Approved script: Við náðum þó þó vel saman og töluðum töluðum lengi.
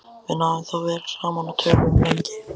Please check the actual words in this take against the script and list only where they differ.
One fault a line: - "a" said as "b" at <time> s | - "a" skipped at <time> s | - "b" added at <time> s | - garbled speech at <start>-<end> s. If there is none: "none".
- "þó" skipped at 0.8 s
- "töluðum" skipped at 2.0 s